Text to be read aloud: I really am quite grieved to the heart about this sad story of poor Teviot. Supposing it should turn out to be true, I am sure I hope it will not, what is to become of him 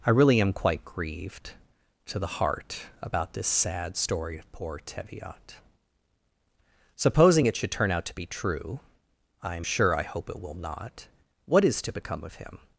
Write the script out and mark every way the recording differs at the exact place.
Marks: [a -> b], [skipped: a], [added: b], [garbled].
I really am quite grieved to the heart about this sad story of poor Teviot. Supposing it should turn out to be true, I am sure I hope it will not, what is to become of him